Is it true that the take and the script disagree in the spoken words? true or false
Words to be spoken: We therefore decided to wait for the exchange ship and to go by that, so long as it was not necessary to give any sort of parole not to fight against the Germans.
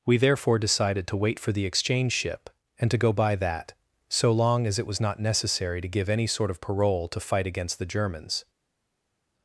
true